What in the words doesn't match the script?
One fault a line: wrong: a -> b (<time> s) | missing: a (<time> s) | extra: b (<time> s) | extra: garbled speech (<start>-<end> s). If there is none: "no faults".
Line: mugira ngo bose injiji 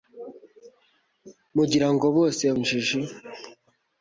no faults